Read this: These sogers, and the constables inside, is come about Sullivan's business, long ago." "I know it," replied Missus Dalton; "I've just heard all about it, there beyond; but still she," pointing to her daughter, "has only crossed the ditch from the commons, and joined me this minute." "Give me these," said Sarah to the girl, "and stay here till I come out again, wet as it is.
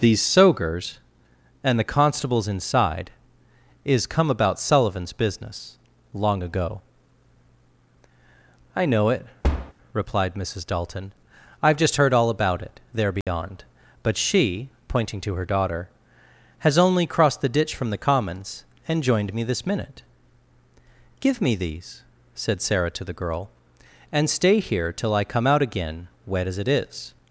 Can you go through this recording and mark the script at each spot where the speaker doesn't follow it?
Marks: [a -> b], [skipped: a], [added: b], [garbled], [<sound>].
These sogers, and the constables inside, is come about Sullivan's business, long ago." "I know it," [thud] replied Missus Dalton; "I've just heard all about it, there beyond; [dropout] but [skipped: still] she," pointing to her daughter, "has only crossed the ditch from the commons, and joined me this minute." "Give me these," said Sarah to the girl, "and stay here till I come out again, wet as it is.